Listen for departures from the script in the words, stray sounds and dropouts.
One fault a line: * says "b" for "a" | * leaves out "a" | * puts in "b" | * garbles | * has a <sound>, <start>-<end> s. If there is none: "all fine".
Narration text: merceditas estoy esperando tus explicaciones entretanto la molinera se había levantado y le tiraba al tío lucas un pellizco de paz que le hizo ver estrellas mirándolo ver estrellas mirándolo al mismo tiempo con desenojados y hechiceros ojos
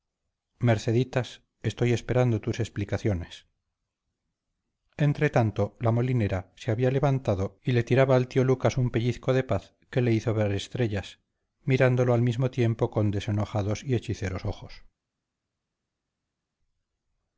* leaves out "ver estrellas mirándolo"